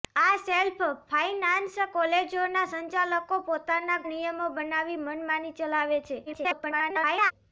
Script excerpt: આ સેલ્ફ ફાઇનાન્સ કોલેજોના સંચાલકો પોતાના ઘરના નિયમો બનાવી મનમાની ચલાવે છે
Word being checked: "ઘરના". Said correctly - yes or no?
no